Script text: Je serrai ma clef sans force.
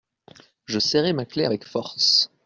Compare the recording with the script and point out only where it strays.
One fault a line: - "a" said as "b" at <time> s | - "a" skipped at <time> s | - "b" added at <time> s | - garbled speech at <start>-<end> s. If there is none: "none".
- "sans" said as "avec" at 1.4 s